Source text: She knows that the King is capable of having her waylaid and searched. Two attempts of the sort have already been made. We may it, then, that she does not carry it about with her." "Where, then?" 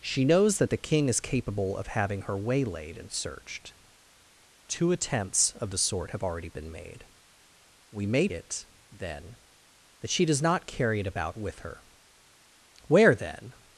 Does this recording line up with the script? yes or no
yes